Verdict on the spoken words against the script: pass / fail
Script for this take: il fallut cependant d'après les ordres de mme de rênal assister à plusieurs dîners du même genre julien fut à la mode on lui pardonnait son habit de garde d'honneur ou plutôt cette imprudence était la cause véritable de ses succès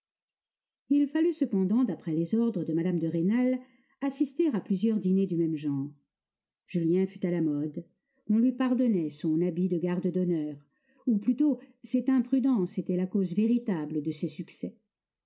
pass